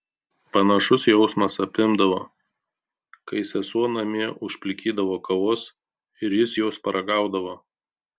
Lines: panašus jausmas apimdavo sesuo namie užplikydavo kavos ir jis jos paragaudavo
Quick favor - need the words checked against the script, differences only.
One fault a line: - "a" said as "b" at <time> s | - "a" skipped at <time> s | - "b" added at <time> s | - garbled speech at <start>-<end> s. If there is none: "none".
- "kai" added at 3.3 s